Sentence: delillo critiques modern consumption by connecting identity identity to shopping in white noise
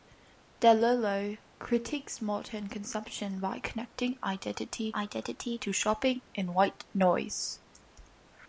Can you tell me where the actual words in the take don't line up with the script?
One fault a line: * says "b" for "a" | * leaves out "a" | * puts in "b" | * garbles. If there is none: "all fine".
all fine